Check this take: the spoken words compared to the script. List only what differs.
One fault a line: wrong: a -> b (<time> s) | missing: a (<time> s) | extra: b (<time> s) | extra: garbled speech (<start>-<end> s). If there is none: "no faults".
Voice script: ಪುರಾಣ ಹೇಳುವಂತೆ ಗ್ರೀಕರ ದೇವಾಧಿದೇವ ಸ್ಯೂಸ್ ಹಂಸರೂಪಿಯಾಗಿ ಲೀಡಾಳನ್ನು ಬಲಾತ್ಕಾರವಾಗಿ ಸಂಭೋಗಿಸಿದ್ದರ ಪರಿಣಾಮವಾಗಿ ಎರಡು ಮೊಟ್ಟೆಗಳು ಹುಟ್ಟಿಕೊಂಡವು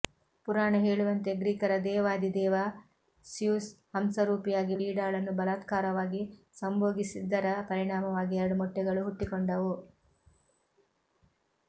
no faults